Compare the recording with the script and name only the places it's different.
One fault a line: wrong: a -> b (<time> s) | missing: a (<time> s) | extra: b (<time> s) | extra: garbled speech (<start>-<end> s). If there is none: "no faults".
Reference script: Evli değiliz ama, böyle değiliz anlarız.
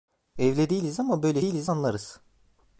no faults